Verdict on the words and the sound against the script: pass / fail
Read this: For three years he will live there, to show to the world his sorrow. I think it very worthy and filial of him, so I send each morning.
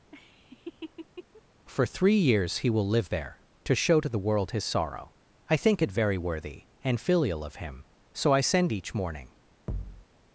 fail